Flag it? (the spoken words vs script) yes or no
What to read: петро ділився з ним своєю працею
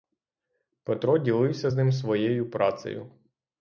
no